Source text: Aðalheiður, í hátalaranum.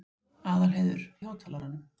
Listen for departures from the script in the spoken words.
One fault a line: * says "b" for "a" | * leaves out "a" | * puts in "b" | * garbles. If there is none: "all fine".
all fine